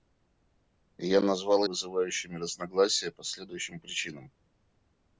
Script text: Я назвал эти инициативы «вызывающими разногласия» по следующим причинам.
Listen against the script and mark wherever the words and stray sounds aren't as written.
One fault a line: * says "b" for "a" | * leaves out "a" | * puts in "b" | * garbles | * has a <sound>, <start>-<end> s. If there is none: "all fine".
* leaves out "эти инициативы"